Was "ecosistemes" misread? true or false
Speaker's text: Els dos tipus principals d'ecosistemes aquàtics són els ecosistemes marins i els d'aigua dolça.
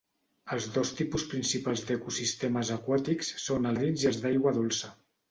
true